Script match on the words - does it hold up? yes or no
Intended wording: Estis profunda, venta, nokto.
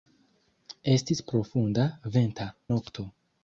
yes